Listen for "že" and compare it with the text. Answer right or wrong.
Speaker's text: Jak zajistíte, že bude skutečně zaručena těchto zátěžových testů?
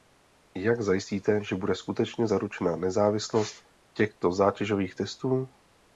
right